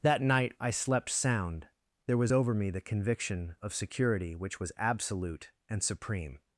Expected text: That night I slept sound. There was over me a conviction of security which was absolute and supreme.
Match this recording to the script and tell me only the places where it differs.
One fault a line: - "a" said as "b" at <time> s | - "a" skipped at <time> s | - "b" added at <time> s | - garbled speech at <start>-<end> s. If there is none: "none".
- "a" said as "the" at 2.7 s